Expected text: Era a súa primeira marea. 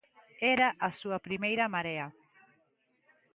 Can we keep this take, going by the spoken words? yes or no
yes